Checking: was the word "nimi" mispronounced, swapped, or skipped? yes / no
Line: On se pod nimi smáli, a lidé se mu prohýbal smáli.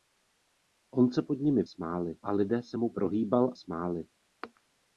no